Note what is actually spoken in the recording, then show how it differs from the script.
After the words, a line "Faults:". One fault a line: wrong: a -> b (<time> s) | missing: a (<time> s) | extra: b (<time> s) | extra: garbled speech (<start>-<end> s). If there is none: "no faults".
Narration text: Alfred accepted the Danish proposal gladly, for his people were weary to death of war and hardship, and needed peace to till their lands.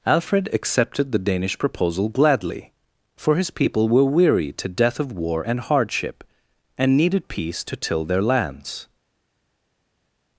Alfred accepted the Danish proposal gladly, for his people were weary to death of war and hardship, and needed peace to till their lands.
Faults:
no faults